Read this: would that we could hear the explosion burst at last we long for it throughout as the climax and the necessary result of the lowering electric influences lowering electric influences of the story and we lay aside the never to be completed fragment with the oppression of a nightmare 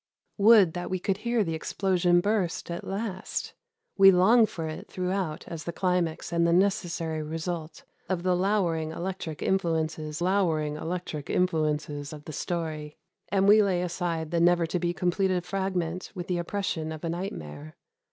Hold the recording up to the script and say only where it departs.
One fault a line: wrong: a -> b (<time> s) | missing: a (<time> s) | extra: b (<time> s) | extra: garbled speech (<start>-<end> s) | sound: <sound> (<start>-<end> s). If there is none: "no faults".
no faults